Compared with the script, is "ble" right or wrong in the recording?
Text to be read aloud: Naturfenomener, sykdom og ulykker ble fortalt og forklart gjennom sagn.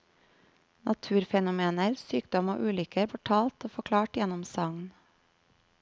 wrong